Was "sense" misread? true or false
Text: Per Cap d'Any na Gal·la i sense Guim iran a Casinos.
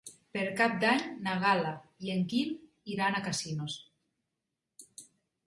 true